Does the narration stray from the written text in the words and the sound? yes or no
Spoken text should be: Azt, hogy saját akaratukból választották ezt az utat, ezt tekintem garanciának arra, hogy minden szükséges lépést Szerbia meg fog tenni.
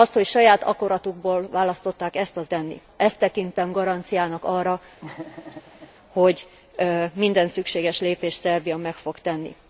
yes